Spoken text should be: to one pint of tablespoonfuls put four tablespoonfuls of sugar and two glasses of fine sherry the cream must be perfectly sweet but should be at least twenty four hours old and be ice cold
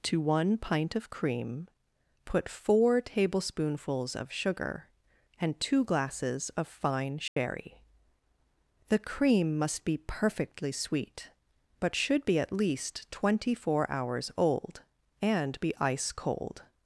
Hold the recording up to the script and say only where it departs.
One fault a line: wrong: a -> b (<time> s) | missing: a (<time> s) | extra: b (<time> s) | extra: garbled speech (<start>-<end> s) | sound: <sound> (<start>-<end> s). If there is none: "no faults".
wrong: tablespoonfuls -> cream (1.1 s)
sound: dropout (7.3-7.4 s)